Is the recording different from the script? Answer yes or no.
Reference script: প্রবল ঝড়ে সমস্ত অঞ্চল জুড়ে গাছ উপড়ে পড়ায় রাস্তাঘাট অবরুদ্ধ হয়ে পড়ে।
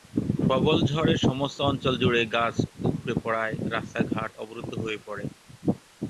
no